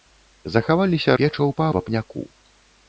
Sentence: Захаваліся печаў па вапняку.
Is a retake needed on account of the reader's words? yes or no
no